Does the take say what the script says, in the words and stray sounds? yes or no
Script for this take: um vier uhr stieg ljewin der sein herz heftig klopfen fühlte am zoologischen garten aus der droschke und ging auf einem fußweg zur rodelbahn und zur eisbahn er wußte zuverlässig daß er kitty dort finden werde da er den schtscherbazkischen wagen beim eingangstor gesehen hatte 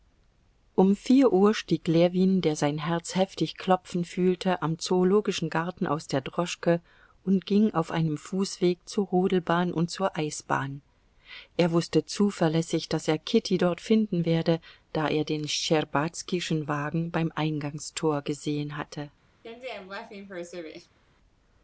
no